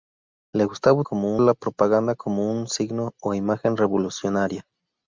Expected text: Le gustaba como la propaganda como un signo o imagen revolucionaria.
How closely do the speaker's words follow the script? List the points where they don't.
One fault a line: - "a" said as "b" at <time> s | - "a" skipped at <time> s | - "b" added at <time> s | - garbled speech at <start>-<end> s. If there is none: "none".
none